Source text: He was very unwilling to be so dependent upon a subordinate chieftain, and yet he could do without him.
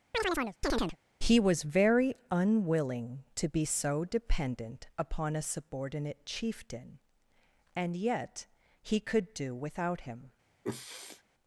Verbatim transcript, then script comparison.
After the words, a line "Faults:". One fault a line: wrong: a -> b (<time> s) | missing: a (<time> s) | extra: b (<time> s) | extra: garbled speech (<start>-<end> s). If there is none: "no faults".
He was very unwilling to be so dependent upon a subordinate chieftain, and yet he could do without him.
Faults:
no faults